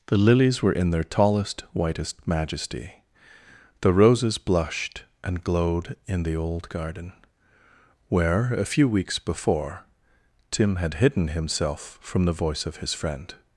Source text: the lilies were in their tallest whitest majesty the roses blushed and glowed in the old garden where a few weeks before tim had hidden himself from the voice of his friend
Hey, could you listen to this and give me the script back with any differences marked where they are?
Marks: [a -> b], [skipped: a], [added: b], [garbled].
the lilies were in their tallest whitest majesty the roses blushed and glowed in the old garden where a few weeks before tim had hidden himself from the voice of his friend